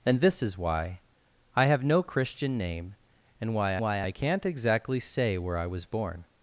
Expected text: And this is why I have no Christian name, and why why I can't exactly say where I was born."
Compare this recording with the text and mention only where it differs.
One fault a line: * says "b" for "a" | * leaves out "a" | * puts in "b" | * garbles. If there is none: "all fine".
all fine